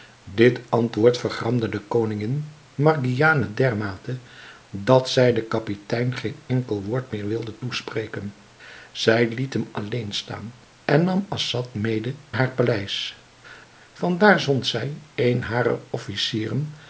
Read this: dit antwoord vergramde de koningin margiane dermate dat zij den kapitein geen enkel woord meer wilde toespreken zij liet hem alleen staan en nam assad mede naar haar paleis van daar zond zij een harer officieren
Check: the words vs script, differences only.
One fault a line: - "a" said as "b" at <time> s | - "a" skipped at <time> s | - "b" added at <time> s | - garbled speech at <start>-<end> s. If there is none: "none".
- "naar" skipped at 12.2 s